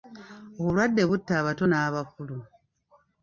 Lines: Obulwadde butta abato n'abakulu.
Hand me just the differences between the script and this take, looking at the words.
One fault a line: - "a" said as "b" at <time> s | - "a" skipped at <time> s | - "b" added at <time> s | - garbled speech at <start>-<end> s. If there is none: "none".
none